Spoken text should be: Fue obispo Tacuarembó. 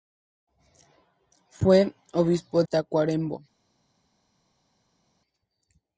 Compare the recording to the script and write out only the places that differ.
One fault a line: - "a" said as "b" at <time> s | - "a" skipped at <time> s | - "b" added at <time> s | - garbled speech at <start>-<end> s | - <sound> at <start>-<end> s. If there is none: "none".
none